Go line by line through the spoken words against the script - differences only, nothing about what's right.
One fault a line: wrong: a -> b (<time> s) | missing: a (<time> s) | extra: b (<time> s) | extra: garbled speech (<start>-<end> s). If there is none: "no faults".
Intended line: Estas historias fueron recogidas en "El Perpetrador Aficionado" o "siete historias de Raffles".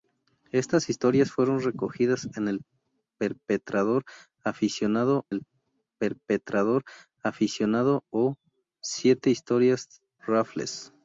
extra: el Perpetrador Aficionado (5.3 s)
missing: de (10.0 s)